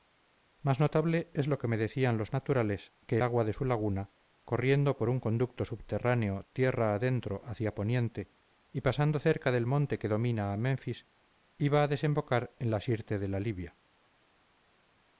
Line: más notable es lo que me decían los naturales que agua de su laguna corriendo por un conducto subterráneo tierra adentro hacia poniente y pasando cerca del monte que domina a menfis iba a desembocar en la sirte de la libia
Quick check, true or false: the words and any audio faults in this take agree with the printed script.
true